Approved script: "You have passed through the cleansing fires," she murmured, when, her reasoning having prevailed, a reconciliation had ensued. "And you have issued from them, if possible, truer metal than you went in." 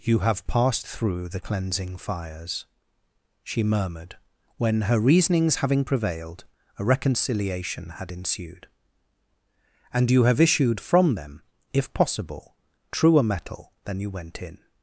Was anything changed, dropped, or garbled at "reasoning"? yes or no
yes